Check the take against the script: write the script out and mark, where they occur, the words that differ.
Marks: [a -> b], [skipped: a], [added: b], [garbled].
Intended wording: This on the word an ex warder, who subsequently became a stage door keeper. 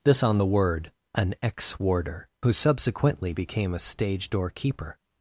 This on the word an ex warder, who subsequently became a stage door keeper.